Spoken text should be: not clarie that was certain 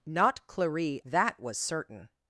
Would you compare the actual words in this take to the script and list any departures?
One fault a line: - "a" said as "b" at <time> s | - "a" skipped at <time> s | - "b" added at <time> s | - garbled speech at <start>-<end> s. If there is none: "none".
none